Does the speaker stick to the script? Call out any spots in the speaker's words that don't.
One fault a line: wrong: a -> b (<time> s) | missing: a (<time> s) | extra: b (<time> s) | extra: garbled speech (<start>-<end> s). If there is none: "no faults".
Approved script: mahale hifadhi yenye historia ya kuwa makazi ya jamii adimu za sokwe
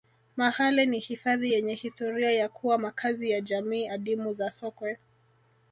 extra: ni (0.8 s)